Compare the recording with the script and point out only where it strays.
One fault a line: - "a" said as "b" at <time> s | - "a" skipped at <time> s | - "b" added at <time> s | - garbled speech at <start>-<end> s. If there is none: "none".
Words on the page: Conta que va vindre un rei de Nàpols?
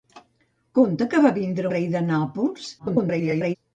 - "un" skipped at 1.7 s
- garbled speech at 2.8-3.6 s